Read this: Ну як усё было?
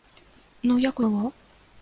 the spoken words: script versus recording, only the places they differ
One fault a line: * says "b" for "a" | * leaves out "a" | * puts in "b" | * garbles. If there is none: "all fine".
* leaves out "усё"